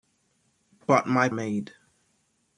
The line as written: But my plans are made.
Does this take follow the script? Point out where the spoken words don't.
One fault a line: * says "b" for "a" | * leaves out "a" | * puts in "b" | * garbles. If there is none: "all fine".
* leaves out "plans are"